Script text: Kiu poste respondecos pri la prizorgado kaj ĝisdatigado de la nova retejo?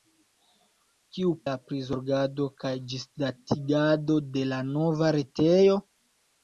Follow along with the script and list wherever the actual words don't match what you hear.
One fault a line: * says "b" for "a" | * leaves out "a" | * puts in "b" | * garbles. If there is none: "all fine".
* leaves out "poste respondecos pri"